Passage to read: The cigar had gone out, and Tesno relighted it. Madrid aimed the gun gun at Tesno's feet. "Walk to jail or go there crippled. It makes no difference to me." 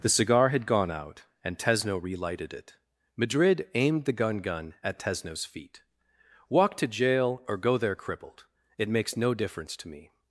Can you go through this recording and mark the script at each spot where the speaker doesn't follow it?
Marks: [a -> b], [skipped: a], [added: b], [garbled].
The cigar had gone out, and Tesno relighted it. Madrid aimed the gun gun at Tesno's feet. "Walk to jail or go there crippled. It makes no difference to me."